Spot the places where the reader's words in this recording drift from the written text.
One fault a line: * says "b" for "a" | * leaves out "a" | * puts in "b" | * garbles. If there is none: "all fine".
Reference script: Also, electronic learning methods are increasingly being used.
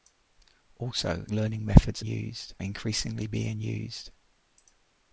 * leaves out "electronic"
* says "used" for "are"